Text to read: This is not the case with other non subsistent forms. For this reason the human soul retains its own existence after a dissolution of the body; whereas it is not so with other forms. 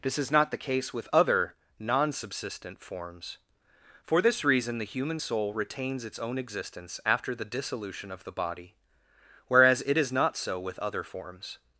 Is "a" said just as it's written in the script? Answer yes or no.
no